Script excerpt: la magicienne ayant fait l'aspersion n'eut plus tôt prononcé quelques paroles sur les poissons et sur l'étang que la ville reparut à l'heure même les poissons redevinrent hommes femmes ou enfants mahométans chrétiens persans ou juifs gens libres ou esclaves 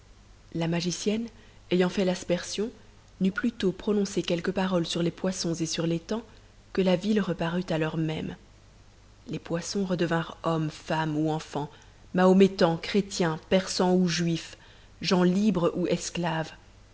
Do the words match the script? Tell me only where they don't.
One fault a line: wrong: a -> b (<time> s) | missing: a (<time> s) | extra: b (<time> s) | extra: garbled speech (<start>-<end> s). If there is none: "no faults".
no faults